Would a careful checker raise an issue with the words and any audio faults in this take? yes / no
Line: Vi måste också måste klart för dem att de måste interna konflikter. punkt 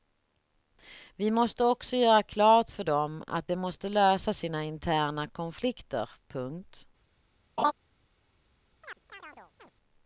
yes